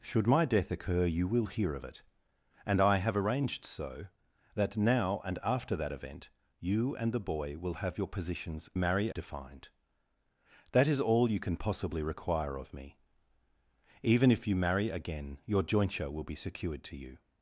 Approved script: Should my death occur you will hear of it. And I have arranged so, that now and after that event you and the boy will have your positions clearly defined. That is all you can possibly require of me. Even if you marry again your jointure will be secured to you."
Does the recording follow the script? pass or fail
fail